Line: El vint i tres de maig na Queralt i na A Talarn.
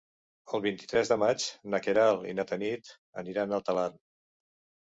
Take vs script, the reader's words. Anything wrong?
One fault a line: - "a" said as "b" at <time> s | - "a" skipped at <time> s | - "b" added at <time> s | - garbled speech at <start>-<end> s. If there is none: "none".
- "Tanit aniran" added at 2.5 s